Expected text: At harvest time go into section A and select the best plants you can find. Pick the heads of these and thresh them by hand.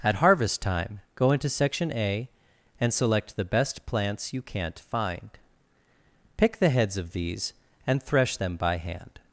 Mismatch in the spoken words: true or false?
true